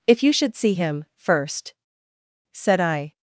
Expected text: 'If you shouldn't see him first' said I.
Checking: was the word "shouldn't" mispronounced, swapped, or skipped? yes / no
yes